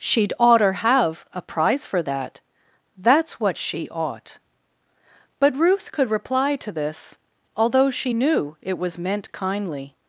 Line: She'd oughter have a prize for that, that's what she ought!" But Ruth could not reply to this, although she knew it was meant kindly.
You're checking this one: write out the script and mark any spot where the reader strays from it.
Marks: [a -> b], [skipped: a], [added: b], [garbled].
She'd oughter have a prize for that, that's what she ought!" But Ruth could [skipped: not] reply to this, although she knew it was meant kindly.